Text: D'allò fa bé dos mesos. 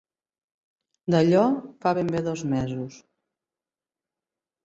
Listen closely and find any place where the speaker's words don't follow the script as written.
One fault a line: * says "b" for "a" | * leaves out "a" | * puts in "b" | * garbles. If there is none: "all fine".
* puts in "ben"